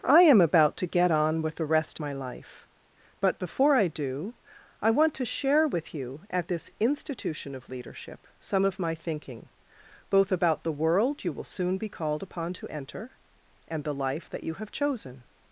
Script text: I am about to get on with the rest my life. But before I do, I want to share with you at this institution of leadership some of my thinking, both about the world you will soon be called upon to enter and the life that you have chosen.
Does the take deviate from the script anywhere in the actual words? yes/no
no